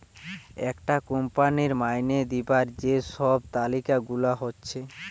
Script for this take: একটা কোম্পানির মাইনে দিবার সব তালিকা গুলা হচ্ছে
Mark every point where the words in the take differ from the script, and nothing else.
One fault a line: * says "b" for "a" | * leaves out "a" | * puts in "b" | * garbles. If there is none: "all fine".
* puts in "যে"